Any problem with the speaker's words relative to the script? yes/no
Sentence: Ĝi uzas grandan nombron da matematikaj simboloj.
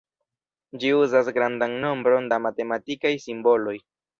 no